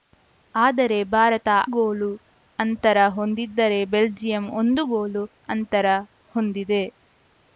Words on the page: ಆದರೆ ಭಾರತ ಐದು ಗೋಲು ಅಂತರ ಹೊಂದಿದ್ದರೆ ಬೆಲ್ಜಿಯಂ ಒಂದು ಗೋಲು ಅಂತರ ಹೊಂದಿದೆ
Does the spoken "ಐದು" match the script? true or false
false